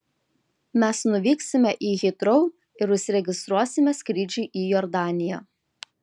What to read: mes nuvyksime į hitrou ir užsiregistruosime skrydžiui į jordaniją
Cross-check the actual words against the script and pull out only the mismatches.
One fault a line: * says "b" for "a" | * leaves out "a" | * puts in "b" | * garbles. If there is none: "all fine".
all fine